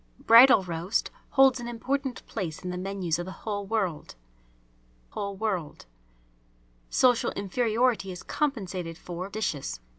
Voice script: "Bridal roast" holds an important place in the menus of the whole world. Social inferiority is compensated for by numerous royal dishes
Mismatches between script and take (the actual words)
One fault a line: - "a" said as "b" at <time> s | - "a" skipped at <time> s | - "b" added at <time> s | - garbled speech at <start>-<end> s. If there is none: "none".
- "whole world" added at 5.1 s
- "by numerous royal" skipped at 9.3 s